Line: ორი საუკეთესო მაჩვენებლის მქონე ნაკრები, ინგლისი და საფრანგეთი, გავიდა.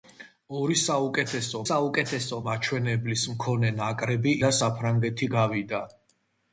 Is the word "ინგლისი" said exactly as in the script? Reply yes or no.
no